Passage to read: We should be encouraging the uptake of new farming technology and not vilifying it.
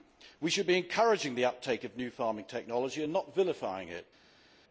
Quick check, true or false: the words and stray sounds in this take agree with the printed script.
true